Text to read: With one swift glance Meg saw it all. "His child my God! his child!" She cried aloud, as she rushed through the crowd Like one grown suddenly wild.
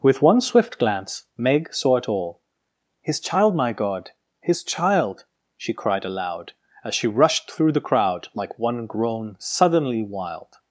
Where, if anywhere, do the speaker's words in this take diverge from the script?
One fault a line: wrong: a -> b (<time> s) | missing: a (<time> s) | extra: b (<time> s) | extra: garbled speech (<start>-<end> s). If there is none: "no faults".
no faults